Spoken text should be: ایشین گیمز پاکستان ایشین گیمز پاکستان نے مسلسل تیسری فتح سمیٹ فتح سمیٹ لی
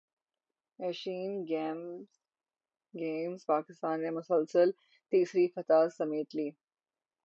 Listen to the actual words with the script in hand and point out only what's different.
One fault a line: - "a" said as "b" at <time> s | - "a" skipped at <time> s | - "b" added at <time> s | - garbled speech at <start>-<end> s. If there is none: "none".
- "ایشین گیمز پاکستان" skipped at 4.0 s
- "فتح سمیٹ" skipped at 6.3 s